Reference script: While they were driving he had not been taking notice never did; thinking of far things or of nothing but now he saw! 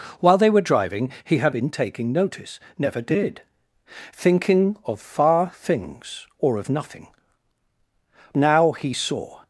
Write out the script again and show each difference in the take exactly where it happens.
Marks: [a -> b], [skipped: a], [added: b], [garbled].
While they were driving he had [skipped: not] been taking notice never did; thinking of far things or of nothing [skipped: but] now he saw!